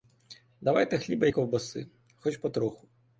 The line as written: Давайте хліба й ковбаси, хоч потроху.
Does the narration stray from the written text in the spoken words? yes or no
no